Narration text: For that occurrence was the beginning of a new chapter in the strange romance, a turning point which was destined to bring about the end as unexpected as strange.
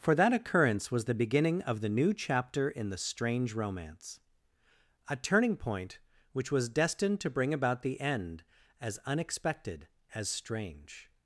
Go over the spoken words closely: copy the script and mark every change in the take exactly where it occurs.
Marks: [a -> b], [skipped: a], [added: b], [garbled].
For that occurrence was the beginning of [a -> the] new chapter in the strange romance, a turning point which was destined to bring about the end as unexpected as strange.